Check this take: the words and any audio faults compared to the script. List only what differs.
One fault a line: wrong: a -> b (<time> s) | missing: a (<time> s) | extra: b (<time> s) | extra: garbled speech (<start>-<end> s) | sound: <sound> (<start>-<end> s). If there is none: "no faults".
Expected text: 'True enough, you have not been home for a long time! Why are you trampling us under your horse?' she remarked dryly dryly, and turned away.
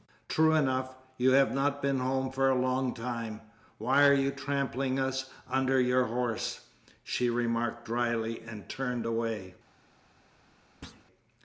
missing: dryly (8.4 s)
sound: thud (10.8-11.1 s)